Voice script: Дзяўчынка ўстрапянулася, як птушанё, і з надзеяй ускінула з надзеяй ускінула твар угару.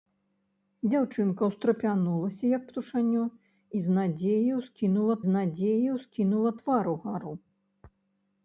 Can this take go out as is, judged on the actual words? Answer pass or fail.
pass